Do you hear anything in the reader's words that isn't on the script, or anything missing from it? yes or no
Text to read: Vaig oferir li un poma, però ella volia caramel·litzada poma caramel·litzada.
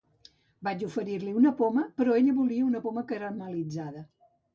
yes